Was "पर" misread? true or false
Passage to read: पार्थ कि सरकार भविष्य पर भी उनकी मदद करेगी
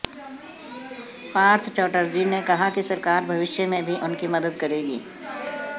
true